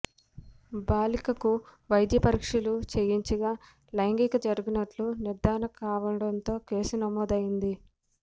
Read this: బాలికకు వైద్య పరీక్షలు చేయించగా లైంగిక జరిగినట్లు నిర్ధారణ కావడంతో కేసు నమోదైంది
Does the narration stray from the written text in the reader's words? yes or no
no